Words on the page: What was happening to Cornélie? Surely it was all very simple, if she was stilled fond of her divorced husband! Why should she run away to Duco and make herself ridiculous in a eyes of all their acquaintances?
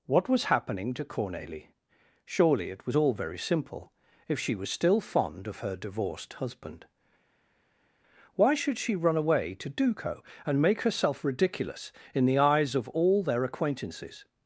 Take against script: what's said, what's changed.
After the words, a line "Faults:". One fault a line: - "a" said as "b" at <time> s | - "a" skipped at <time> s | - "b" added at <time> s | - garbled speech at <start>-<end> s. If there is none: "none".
What was happening to Cornélie? Surely it was all very simple, if she was still fond of her divorced husband! Why should she run away to Duco and make herself ridiculous in the eyes of all their acquaintances?
Faults:
- "stilled" said as "still" at 4.7 s
- "a" said as "the" at 12.2 s